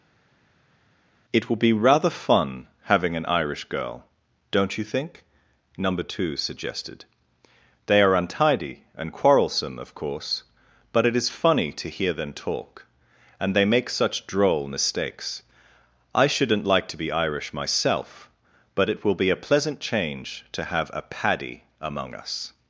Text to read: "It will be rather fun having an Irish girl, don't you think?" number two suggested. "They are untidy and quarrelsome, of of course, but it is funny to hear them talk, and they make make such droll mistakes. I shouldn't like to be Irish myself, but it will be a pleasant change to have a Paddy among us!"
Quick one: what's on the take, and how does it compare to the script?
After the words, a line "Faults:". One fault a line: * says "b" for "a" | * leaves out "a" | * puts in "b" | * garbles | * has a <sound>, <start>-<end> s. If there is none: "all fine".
"It will be rather fun having an Irish girl, don't you think?" number two suggested. "They are untidy and quarrelsome, of course, but it is funny to hear them talk, and they make such droll mistakes. I shouldn't like to be Irish myself, but it will be a pleasant change to have a Paddy among us!"
Faults:
* leaves out "of"
* leaves out "make"